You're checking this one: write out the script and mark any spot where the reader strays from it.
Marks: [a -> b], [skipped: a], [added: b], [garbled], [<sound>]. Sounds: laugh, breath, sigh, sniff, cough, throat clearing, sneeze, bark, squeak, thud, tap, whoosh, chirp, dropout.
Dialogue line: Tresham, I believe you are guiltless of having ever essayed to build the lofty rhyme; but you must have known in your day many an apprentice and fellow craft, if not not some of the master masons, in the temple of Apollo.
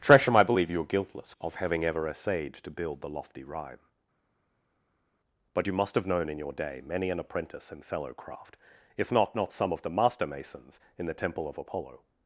Tresham, I believe you are guiltless of having ever essayed to build the lofty rhyme; but you must have known in your day many an apprentice and fellow craft, if not not some of the master masons, in the temple of Apollo.